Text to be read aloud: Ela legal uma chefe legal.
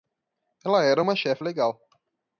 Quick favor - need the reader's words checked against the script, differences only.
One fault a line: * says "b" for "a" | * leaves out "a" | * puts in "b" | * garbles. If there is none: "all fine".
* says "era" for "legal"